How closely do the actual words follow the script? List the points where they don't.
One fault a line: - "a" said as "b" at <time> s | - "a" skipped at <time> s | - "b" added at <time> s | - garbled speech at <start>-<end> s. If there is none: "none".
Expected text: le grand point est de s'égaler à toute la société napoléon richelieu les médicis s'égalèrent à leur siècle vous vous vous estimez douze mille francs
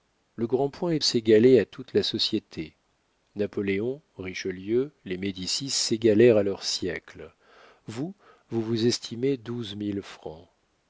- "de" skipped at 1.0 s